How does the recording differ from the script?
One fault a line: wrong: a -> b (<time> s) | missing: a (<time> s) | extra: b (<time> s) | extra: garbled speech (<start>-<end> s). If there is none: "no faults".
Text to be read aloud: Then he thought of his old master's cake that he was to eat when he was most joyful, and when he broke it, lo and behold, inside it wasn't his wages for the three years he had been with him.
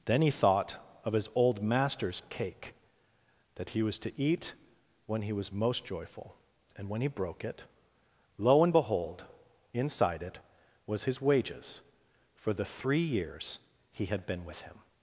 wrong: wasn't -> was (10.9 s)